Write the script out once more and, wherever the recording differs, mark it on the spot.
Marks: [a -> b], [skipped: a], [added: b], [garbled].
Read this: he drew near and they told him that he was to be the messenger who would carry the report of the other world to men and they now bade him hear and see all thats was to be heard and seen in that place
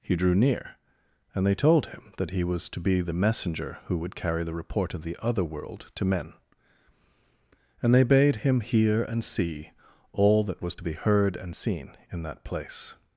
he drew near and they told him that he was to be the messenger who would carry the report of the other world to men and they [skipped: now] bade him hear and see all [thats -> that] was to be heard and seen in that place